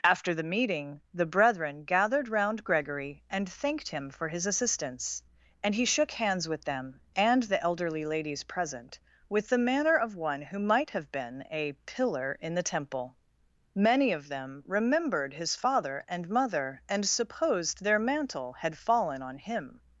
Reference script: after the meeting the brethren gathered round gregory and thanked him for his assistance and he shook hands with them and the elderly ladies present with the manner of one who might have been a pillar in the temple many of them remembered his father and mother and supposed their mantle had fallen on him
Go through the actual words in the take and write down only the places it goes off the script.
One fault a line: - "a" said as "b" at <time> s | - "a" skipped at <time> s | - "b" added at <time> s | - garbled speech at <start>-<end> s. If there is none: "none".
none